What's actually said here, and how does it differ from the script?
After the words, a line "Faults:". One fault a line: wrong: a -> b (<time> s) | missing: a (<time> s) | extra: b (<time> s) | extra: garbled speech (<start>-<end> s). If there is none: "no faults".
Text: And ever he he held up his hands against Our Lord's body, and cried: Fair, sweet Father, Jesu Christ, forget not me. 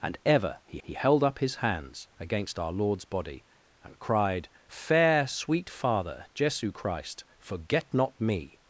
And ever he he held up his hands against Our Lord's body, and cried: Fair, sweet Father, Jesu Christ, forget not me.
Faults:
no faults